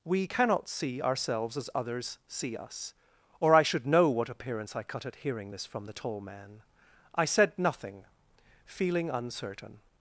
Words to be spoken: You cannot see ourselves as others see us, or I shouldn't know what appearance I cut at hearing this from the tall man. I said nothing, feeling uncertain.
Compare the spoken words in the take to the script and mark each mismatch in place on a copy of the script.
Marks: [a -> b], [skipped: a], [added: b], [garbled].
[You -> We] cannot see ourselves as others see us, or I [shouldn't -> should] know what appearance I cut at hearing this from the tall man. I said nothing, feeling uncertain.